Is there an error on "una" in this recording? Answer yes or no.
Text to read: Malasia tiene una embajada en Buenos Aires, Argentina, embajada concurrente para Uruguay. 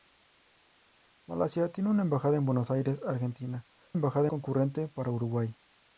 no